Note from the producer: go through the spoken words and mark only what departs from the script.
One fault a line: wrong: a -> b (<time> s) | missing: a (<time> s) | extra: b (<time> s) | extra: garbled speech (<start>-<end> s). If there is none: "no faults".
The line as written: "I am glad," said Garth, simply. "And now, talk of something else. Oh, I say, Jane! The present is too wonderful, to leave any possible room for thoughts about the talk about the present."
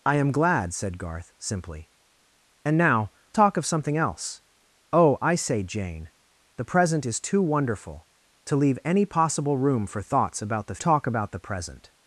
no faults